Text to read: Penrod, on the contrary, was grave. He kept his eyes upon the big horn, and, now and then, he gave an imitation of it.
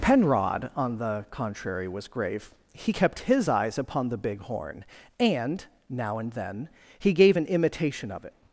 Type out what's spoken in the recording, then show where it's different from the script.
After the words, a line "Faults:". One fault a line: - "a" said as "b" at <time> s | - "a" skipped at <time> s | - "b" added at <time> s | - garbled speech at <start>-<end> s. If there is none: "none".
Penrod, on the contrary, was grave. He kept his eyes upon the big horn, and, now and then, he gave an imitation of it.
Faults:
none